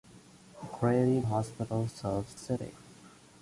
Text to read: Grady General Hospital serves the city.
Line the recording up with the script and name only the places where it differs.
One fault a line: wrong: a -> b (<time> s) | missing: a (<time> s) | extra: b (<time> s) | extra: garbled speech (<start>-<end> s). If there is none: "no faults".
missing: General (1.2 s)
missing: the (2.4 s)